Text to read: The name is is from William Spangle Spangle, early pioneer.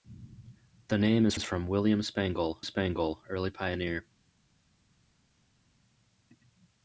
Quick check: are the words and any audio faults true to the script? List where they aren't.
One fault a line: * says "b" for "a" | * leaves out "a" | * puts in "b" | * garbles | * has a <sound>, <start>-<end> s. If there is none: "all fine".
all fine